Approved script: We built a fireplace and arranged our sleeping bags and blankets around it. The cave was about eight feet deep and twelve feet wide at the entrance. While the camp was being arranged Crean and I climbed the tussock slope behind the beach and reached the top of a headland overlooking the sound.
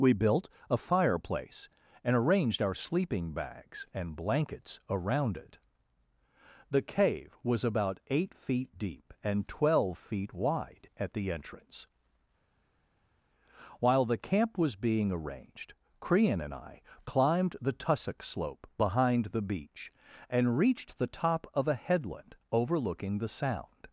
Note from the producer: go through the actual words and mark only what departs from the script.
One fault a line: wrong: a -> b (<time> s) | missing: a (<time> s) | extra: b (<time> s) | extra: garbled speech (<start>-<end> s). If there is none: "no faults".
no faults